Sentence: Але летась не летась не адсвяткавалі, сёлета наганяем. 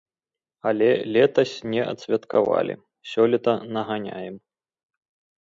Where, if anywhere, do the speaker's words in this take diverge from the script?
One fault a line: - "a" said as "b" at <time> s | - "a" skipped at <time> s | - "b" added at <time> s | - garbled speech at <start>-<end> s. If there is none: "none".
- "летась не" skipped at 1.8 s